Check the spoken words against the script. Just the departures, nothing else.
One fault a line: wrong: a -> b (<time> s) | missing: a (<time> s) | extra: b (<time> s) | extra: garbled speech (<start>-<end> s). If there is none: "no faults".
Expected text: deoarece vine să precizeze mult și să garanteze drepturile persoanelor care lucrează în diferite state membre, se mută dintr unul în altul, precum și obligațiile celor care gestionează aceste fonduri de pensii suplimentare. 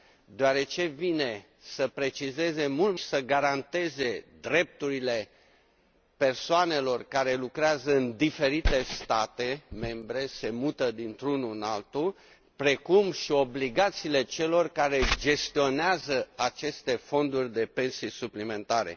no faults